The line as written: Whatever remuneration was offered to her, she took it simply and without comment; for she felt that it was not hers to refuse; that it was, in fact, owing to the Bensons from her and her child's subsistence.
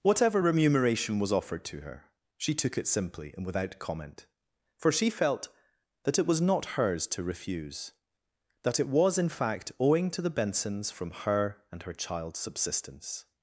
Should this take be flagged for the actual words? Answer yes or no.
no